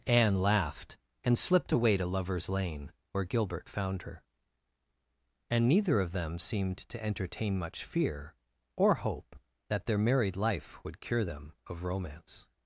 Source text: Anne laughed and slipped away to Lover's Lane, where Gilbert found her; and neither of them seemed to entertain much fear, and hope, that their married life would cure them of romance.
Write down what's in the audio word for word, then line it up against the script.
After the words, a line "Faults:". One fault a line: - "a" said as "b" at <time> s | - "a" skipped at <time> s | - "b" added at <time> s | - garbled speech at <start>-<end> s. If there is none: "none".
Anne laughed and slipped away to Lover's Lane, where Gilbert found her; and neither of them seemed to entertain much fear, or hope, that their married life would cure them of romance.
Faults:
- "and" said as "or" at 8.8 s